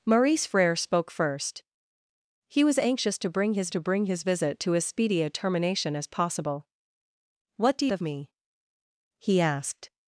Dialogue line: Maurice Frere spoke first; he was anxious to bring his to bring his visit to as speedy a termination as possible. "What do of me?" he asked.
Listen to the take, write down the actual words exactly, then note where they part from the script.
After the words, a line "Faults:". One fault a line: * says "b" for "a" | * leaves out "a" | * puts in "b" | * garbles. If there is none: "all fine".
Maurice Frere spoke first; he was anxious to bring his to bring his visit to as speedy a termination as possible. "What do of me?" he asked.
Faults:
all fine